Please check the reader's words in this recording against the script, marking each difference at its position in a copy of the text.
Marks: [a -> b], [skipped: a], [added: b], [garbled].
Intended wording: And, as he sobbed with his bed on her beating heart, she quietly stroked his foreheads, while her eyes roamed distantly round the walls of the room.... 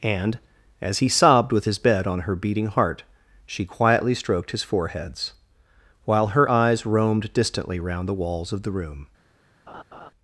And, as he sobbed with his bed on her beating heart, she quietly stroked his foreheads, while her eyes roamed distantly round the walls of the room....